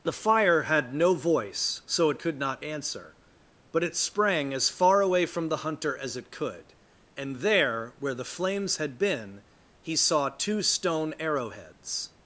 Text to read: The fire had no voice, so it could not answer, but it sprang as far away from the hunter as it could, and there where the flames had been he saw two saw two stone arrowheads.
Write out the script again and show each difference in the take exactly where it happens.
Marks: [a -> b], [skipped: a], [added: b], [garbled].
The fire had no voice, so it could not answer, but it sprang as far away from the hunter as it could, and there where the flames had been he saw two [skipped: saw two] stone arrowheads.